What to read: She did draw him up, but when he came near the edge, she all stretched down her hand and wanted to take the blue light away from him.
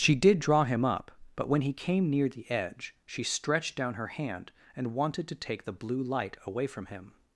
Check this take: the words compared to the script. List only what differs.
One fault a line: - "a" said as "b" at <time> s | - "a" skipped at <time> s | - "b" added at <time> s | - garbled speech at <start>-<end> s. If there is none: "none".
- "all" skipped at 3.2 s